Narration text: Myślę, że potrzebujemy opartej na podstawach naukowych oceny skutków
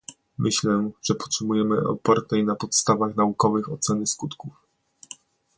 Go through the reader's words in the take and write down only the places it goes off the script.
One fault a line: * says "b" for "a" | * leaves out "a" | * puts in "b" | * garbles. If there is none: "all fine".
all fine